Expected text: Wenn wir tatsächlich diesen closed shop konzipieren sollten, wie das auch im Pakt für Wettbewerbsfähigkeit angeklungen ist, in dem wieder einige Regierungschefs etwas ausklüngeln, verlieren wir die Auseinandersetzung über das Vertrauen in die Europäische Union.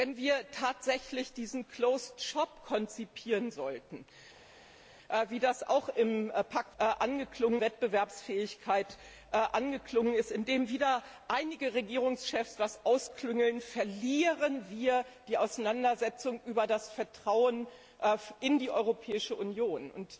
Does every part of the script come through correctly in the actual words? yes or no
no